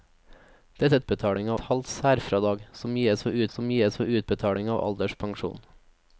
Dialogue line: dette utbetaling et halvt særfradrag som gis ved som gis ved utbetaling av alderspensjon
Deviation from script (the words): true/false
false